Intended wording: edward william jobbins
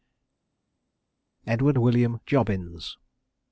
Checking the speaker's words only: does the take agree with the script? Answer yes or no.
yes